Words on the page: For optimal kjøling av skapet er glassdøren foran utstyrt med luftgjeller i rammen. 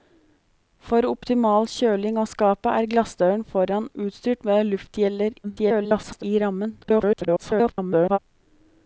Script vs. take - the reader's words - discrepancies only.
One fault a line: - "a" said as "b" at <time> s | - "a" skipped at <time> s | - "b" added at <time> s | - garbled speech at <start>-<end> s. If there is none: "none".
- garbled speech at 5.4-6.2 s
- garbled speech at 6.8-8.2 s